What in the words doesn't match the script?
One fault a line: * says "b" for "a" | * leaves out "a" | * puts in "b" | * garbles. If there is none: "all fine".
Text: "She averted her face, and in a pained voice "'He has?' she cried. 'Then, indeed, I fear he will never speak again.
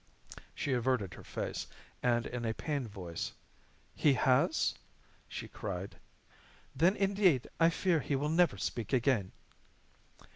all fine